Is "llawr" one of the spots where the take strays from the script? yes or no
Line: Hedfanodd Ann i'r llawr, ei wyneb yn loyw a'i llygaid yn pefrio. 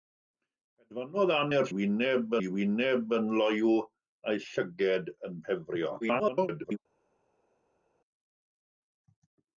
yes